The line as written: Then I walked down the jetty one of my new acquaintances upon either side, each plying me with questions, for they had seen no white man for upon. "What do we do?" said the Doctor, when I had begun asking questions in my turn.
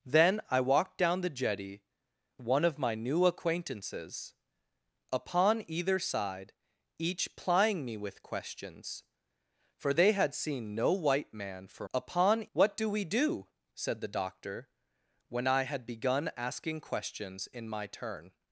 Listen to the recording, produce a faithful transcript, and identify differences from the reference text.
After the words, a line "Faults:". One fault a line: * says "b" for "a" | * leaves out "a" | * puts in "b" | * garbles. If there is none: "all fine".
Then I walked down the jetty one of my new acquaintances upon either side, each plying me with questions, for they had seen no white man for upon. "What do we do?" said the Doctor, when I had begun asking questions in my turn.
Faults:
all fine